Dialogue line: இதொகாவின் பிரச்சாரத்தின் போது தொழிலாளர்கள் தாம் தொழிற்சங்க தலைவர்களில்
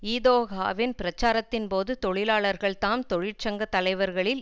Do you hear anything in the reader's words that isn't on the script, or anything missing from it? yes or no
no